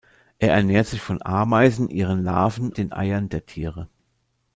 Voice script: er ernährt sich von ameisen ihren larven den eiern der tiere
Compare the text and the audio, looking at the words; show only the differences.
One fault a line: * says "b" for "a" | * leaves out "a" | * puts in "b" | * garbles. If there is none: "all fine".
all fine